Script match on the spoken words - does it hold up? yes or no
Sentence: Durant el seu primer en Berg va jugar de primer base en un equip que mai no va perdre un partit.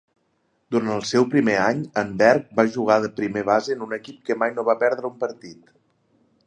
no